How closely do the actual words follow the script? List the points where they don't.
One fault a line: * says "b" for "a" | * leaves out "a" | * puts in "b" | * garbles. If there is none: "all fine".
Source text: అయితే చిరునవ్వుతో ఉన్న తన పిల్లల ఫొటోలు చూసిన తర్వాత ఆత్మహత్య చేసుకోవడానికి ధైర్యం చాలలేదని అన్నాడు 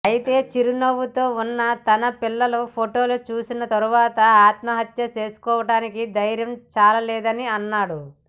all fine